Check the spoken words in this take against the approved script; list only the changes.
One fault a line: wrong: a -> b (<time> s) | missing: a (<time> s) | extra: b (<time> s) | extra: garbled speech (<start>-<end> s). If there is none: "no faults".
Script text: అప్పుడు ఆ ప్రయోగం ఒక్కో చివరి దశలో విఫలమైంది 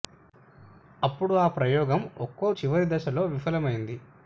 no faults